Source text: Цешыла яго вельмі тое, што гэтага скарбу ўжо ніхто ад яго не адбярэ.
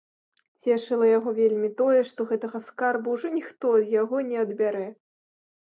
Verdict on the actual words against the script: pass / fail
pass